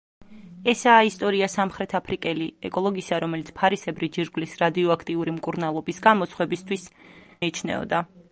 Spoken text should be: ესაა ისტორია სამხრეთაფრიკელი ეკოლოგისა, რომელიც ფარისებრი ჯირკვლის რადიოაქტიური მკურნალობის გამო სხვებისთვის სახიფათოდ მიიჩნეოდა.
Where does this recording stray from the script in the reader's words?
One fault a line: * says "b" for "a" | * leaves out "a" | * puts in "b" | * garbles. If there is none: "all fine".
* leaves out "სახიფათოდ"